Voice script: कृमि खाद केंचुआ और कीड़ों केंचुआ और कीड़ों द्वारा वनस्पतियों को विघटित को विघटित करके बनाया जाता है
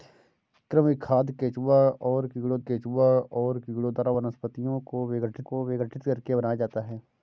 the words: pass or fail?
pass